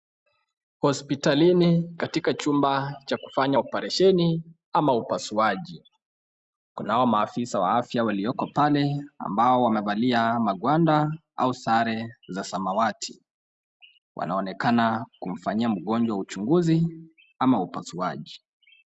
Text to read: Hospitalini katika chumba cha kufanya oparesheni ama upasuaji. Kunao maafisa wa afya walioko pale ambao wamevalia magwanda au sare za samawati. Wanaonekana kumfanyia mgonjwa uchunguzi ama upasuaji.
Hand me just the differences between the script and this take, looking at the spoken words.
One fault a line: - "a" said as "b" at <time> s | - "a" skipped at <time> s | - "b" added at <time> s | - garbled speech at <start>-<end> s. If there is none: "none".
none